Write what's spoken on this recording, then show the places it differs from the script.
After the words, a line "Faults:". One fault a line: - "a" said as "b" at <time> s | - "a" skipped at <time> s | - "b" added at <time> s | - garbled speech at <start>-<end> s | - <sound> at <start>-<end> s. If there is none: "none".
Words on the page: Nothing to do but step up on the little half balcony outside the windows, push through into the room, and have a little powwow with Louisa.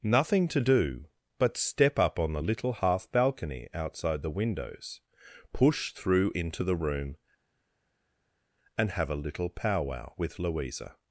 Nothing to do but step up on the little half balcony outside the windows, push through into the room, and have a little powwow with Louisa.
Faults:
none